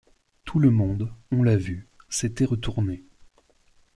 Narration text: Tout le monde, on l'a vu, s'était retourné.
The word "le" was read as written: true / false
true